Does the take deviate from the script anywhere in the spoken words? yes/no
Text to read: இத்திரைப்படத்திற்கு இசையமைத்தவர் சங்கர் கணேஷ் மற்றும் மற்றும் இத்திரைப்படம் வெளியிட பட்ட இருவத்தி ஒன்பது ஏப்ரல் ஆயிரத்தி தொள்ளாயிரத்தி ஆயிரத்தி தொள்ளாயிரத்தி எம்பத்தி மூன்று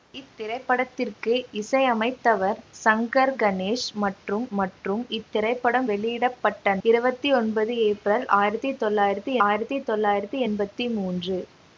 no